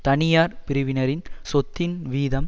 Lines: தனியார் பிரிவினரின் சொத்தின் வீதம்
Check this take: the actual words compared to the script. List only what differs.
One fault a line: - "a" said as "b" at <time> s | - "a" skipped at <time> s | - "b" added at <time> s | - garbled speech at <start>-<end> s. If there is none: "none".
none